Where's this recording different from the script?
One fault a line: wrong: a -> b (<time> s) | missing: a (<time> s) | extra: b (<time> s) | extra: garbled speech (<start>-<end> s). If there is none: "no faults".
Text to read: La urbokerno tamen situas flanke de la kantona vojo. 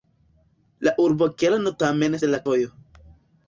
missing: situas flanke (2.2 s)
missing: kantona (2.4 s)